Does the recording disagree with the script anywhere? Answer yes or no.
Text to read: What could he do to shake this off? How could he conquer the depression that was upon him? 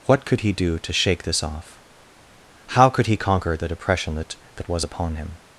yes